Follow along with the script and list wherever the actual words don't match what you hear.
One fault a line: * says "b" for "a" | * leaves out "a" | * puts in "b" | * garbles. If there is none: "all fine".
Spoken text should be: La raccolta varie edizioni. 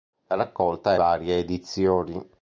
all fine